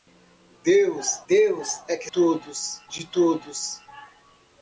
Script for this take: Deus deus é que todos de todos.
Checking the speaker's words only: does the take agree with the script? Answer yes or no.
yes